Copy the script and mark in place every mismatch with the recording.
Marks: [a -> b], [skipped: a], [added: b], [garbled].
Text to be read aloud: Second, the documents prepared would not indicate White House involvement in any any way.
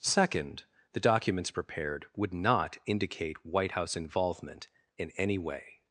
Second, the documents prepared would not indicate White House involvement in any [skipped: any] way.